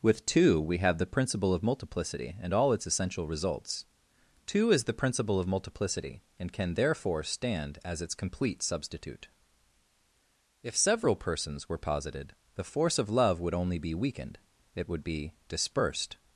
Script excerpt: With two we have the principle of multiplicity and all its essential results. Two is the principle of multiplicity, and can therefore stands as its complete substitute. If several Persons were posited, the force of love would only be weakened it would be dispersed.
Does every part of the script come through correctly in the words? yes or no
no